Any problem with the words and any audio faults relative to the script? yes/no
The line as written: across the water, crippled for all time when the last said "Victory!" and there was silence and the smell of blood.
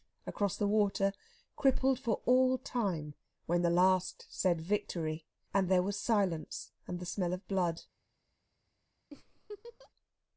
yes